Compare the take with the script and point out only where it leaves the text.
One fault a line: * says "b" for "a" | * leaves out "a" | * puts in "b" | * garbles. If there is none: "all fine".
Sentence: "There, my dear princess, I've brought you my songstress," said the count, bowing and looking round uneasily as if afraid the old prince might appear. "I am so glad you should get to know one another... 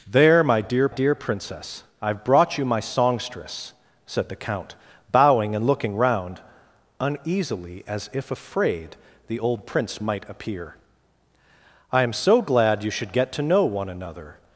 * puts in "dear"